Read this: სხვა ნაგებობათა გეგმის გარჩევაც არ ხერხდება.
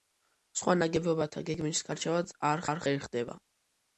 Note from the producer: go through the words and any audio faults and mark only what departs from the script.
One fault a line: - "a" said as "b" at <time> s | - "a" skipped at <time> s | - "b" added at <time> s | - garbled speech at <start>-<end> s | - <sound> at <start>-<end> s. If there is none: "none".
- "არ" added at 2.7 s